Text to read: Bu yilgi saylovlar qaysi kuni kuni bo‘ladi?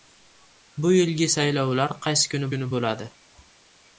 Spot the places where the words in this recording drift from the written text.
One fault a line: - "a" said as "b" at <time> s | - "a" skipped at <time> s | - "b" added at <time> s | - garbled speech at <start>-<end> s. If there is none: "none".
none